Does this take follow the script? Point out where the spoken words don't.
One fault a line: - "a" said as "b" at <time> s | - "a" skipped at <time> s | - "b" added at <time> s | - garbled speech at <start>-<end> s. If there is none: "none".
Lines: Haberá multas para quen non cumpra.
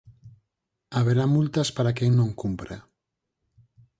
none